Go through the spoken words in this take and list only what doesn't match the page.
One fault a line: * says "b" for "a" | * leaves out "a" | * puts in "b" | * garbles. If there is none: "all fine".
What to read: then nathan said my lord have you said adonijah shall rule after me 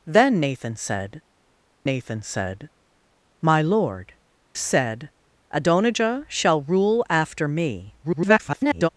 * puts in "nathan said"
* leaves out "have you"
* garbles